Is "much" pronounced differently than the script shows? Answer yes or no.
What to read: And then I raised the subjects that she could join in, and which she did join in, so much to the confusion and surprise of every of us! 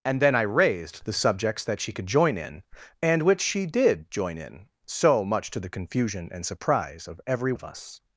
no